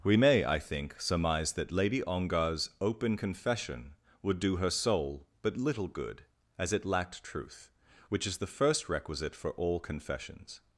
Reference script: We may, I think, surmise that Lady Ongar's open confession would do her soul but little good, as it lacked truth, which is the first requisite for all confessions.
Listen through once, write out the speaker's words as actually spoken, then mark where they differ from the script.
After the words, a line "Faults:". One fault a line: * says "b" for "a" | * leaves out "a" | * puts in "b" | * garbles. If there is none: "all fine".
We may, I think, surmise that Lady Ongar's open confession would do her soul but little good, as it lacked truth, which is the first requisite for all confessions.
Faults:
all fine